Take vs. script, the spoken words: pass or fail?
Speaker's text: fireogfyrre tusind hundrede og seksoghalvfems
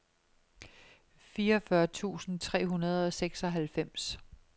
fail